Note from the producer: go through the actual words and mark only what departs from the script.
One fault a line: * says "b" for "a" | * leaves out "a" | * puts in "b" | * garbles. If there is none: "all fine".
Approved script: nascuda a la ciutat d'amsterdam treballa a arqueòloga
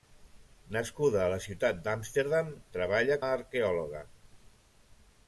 all fine